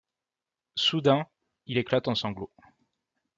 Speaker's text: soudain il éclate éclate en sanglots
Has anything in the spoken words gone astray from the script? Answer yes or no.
yes